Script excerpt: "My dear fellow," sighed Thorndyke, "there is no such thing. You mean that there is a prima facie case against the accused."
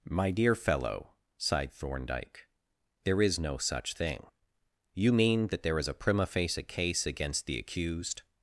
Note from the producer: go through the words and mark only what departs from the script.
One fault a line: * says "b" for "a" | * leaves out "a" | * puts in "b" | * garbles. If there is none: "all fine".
all fine